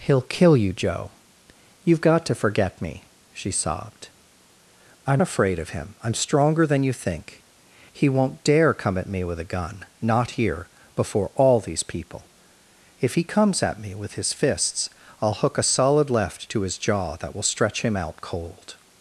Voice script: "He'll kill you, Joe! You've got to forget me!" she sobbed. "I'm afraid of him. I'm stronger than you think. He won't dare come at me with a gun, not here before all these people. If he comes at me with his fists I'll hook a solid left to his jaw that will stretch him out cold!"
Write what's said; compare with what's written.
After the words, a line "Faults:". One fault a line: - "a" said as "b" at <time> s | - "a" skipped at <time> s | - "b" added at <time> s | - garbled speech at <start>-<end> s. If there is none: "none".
"He'll kill you, Joe! You've got to forget me!" she sobbed. "I'm afraid of him. I'm stronger than you think. He won't dare come at me with a gun, not here before all these people. If he comes at me with his fists I'll hook a solid left to his jaw that will stretch him out cold!"
Faults:
none